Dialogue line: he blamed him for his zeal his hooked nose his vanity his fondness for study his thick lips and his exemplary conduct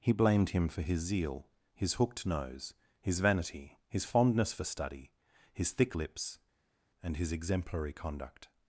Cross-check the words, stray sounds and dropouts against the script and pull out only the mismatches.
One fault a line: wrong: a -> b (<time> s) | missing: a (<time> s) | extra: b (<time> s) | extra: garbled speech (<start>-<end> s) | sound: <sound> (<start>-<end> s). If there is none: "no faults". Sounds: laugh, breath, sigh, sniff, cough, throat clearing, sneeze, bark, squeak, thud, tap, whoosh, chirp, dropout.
no faults